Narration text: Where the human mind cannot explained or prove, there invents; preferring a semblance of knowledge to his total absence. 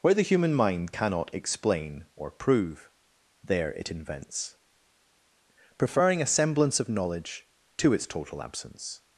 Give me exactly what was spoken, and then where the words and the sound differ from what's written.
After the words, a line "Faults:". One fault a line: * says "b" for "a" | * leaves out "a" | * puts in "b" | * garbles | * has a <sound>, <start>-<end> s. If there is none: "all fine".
Where the human mind cannot explain or prove, there it invents; preferring a semblance of knowledge to its total absence.
Faults:
* says "explain" for "explained"
* puts in "it"
* says "its" for "his"